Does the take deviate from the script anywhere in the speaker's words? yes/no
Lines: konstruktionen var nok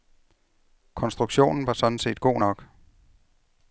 yes